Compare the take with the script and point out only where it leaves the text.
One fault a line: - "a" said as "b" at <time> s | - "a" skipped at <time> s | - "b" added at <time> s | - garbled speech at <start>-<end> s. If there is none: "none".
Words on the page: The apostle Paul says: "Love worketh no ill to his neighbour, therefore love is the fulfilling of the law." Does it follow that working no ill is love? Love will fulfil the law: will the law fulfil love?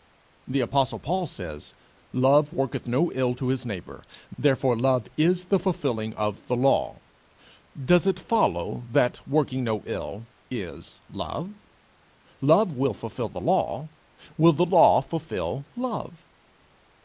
none